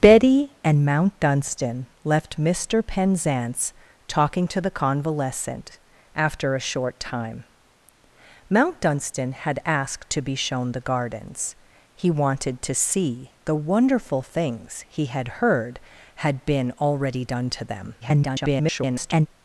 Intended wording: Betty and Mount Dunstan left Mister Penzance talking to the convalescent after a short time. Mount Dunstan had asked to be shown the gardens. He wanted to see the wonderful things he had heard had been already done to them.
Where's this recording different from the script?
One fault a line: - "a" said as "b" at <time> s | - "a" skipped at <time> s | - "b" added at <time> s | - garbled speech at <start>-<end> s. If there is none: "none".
- garbled speech at 18.0-19.3 s